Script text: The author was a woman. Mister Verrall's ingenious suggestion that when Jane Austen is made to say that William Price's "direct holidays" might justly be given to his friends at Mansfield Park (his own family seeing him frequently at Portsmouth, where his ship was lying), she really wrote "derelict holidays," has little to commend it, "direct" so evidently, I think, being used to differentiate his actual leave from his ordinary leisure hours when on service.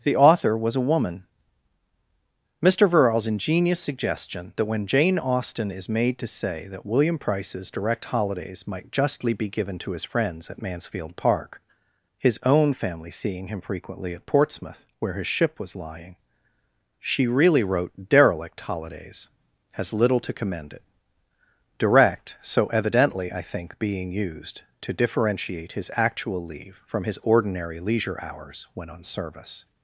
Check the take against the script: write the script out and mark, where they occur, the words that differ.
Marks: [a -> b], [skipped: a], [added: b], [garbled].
The author was a woman. Mister Verrall's ingenious suggestion that when Jane Austen is made to say that William Price's "direct holidays" might justly be given to his friends at Mansfield Park (his own family seeing him frequently at Portsmouth, where his ship was lying), she really wrote "derelict holidays," has little to commend it, "direct" so evidently, I think, being used to differentiate his actual leave from his ordinary leisure hours when on service.